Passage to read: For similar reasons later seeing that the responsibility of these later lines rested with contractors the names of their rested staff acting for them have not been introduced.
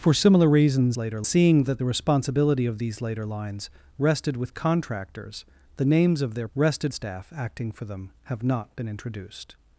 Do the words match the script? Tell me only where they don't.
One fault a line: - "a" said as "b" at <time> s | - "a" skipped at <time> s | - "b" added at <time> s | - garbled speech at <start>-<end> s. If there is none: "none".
none